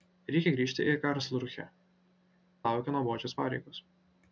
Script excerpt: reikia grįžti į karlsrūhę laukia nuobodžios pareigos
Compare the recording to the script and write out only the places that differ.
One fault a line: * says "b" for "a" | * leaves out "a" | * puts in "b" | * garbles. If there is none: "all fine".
all fine